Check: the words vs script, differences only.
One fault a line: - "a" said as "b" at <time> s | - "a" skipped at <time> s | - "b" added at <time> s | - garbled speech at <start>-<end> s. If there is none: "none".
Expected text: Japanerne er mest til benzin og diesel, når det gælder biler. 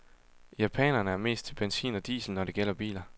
none